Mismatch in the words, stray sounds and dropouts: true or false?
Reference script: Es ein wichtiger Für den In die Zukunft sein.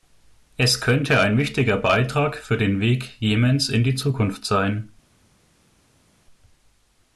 true